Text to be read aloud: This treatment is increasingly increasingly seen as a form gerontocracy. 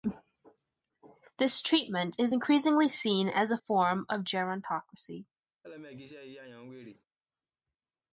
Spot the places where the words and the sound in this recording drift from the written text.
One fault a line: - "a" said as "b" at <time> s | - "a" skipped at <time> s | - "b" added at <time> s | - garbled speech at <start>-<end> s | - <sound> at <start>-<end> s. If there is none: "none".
- "increasingly" skipped at 2.9 s
- "of" added at 4.1 s
- laugh at 5.6-7.1 s